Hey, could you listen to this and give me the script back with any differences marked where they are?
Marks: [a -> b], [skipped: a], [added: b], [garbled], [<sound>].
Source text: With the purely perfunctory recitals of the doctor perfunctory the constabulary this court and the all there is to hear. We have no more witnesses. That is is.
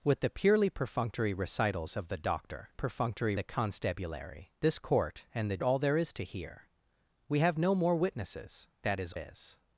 With the purely perfunctory recitals of the doctor perfunctory the constabulary this court and the all there is to hear. We have no more witnesses. That is is.